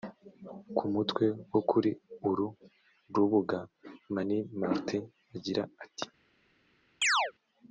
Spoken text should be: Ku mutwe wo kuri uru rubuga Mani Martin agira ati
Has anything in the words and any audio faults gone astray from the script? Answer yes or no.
yes